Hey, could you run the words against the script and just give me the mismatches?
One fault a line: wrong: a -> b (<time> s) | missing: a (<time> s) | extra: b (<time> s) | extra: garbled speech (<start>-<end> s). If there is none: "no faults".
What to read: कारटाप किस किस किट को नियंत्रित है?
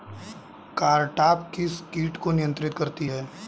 missing: किस (1.8 s)
extra: करती (2.7 s)